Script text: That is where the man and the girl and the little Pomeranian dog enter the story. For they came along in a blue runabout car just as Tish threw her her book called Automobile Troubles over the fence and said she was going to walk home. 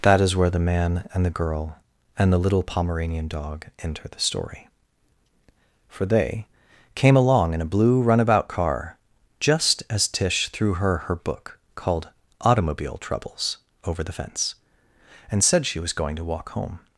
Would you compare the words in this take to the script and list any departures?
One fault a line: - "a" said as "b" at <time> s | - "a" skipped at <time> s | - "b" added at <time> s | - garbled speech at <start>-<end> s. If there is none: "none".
none